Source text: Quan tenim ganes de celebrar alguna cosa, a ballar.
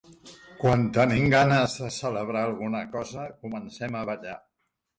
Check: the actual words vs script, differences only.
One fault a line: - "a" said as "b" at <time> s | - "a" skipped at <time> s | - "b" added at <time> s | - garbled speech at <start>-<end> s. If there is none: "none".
- "comencem" added at 3.5 s